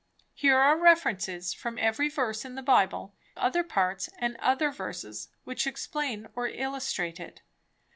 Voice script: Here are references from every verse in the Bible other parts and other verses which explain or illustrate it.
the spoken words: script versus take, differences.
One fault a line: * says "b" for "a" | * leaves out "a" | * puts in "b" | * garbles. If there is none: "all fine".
all fine